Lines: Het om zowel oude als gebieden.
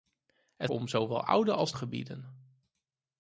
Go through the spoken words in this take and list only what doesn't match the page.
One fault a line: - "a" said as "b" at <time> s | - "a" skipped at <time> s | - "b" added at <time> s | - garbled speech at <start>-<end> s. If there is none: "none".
none